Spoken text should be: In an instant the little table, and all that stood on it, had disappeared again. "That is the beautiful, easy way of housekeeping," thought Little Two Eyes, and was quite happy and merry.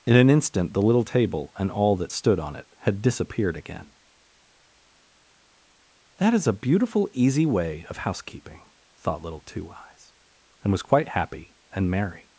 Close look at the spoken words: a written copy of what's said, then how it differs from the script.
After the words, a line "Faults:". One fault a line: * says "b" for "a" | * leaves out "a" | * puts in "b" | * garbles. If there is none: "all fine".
In an instant the little table, and all that stood on it, had disappeared again. "That is a beautiful, easy way of housekeeping," thought Little Two Eyes, and was quite happy and merry.
Faults:
* says "a" for "the"